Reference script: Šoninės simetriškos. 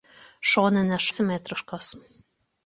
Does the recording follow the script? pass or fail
pass